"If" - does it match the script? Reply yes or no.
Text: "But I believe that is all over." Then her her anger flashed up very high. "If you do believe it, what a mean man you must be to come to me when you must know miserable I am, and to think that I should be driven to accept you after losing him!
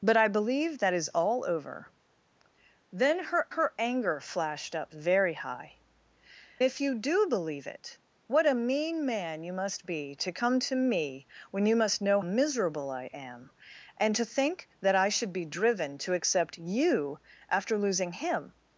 yes